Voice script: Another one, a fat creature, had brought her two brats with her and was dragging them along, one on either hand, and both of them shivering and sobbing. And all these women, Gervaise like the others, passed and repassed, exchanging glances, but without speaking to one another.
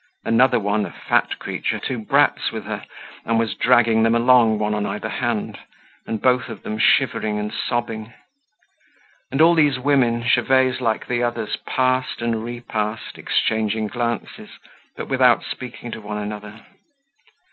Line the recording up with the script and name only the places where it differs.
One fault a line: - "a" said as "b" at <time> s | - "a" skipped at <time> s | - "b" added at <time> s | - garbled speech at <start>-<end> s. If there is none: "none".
- "had brought her" skipped at 1.8 s